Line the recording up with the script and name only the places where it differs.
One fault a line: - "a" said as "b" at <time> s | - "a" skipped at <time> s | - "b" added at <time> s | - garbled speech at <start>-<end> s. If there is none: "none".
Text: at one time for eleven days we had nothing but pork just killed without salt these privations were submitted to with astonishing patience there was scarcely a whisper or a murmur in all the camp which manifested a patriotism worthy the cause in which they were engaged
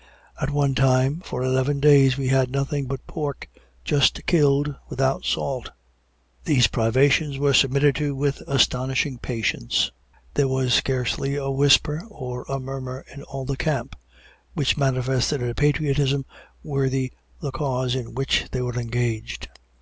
none